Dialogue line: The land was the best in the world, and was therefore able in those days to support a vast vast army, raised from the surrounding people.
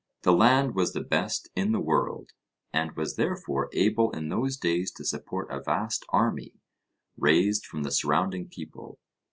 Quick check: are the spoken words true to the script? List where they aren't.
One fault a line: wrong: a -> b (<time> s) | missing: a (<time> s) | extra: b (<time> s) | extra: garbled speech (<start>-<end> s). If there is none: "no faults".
missing: vast (6.0 s)